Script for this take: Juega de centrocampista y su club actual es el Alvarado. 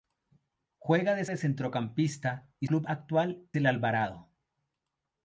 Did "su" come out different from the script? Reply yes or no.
yes